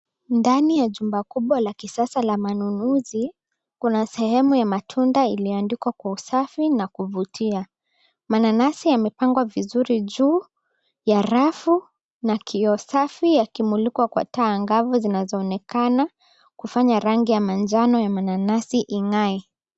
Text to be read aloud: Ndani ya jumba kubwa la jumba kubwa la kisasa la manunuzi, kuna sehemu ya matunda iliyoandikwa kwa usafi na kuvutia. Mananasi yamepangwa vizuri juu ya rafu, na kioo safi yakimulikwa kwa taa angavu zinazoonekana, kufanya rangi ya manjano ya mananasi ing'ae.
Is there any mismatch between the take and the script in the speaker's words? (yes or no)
yes